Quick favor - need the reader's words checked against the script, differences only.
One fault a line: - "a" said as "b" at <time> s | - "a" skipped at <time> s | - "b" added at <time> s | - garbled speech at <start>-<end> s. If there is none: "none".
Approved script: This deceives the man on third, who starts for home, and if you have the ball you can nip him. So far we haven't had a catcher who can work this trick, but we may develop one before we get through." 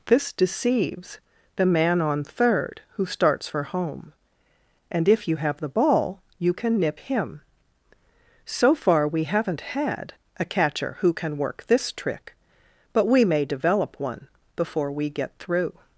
none